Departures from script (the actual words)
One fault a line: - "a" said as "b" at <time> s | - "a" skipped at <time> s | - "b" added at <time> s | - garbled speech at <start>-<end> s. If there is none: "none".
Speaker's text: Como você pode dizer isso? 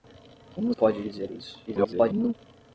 - "você" skipped at 0.7 s
- garbled speech at 1.7-2.3 s